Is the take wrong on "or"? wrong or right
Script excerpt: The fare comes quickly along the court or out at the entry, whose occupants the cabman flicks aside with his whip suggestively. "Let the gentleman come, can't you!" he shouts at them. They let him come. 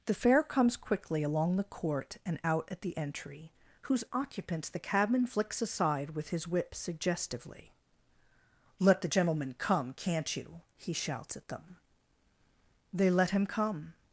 wrong